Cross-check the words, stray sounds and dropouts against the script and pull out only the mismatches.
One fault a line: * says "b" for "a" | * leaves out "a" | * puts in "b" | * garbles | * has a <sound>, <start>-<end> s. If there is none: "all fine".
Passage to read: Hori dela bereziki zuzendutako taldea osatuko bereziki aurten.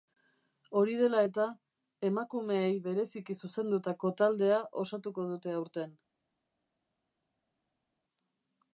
* puts in "eta emakumeei"
* says "dute" for "bereziki"